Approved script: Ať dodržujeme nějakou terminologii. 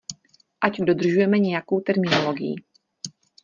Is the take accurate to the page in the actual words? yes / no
yes